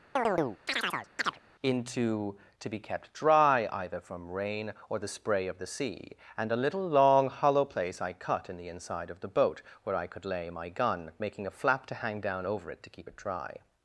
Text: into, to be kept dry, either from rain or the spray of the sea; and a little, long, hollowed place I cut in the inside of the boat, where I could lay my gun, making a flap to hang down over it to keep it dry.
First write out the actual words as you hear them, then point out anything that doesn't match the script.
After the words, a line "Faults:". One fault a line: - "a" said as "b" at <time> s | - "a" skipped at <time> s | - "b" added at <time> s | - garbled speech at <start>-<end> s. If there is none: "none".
into, to be kept dry, either from rain or the spray of the sea; and a little, long, hollow place I cut in the inside of the boat, where I could lay my gun, making a flap to hang down over it to keep it dry.
Faults:
- "hollowed" said as "hollow" at 7.3 s